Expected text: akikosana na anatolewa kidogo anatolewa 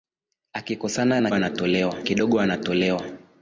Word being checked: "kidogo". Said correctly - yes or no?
yes